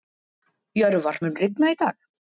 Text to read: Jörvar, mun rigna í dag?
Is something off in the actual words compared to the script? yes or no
no